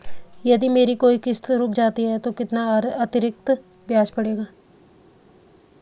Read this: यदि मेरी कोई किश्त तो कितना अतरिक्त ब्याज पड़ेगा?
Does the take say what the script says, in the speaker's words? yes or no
no